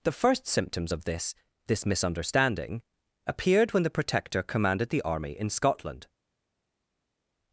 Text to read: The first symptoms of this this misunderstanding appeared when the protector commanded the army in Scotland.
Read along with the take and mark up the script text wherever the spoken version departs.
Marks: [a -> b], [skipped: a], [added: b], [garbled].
The first symptoms of this this misunderstanding appeared when the protector commanded the army in Scotland.